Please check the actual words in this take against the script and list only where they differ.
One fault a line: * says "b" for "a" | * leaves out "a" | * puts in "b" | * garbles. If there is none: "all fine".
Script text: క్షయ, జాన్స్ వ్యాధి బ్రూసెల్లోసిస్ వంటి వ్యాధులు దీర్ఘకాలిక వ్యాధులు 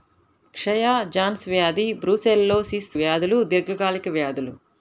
* leaves out "వంటి"